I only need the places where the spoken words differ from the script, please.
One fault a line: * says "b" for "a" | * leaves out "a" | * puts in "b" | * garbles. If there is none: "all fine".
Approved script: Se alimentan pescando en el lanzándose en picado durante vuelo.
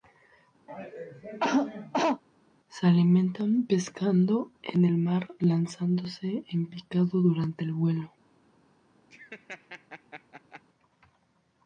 * puts in "mar"
* puts in "el"